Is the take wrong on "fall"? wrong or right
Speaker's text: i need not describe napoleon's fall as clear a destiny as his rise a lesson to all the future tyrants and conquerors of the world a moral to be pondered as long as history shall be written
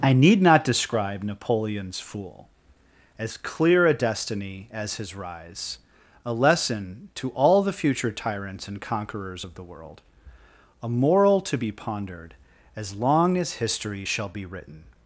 wrong